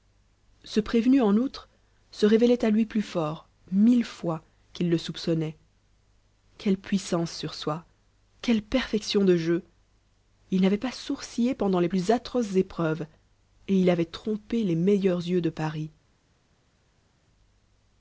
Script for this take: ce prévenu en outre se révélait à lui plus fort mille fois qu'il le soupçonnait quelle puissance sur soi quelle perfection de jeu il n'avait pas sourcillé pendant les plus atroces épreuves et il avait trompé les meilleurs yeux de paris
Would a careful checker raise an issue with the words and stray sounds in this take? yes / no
no